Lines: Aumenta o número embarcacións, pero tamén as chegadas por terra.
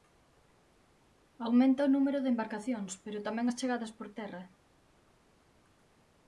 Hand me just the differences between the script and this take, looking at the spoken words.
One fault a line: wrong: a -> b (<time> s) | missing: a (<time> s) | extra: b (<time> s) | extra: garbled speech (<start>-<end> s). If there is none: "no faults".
extra: de (2.2 s)